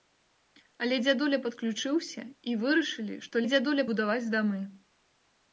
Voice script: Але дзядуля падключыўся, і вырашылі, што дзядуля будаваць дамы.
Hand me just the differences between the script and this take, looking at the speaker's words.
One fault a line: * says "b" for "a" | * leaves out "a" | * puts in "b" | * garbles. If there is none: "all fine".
all fine